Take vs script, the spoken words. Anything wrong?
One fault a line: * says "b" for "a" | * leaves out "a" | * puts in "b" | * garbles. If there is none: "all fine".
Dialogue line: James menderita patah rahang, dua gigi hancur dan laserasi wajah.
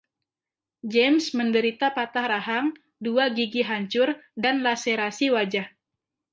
all fine